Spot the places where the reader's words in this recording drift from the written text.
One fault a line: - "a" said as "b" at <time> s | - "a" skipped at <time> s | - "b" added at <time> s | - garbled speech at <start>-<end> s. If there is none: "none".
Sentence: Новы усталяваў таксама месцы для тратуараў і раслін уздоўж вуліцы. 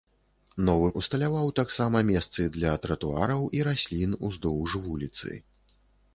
none